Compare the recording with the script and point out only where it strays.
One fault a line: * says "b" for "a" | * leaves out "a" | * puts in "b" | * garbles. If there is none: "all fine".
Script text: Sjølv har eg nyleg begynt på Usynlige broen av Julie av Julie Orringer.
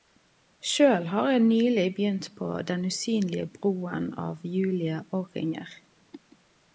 * puts in "Den"
* leaves out "av Julie"